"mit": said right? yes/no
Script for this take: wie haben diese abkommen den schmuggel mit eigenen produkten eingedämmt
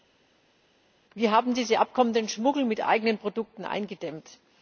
yes